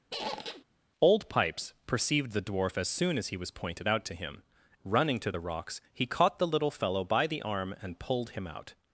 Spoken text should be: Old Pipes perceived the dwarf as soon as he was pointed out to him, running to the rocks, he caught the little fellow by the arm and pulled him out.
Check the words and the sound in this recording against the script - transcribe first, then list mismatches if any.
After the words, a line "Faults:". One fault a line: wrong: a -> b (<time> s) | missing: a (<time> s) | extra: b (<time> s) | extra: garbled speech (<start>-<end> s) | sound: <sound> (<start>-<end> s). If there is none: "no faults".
Old Pipes perceived the dwarf as soon as he was pointed out to him, running to the rocks, he caught the little fellow by the arm and pulled him out.
Faults:
sound: squeak (0.1-0.6 s)